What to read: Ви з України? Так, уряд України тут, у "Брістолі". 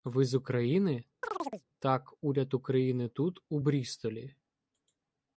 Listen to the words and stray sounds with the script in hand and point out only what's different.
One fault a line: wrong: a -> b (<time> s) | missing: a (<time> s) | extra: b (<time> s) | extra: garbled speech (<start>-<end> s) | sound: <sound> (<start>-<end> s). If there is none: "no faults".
sound: chirp (1.2-1.6 s)